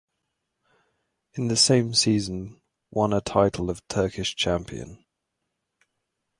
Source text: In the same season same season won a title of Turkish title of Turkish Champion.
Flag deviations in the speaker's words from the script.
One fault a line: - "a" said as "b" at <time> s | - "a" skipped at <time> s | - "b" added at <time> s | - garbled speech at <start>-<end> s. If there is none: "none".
- "same season" skipped at 2.6 s
- "title of Turkish" skipped at 4.3 s